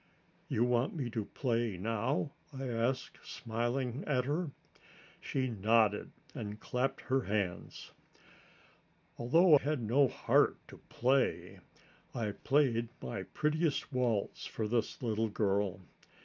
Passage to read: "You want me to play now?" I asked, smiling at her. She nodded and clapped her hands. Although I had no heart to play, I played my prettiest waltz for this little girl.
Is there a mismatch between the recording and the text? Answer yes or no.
yes